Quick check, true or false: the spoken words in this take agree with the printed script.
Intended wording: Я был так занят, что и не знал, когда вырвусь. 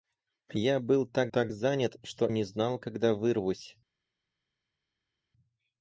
false